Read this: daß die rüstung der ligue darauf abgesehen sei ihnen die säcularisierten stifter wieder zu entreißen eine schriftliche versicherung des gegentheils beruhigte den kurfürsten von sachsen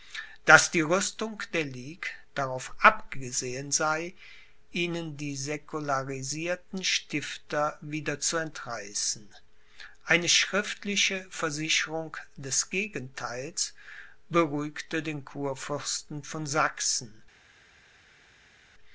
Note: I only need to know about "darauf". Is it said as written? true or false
true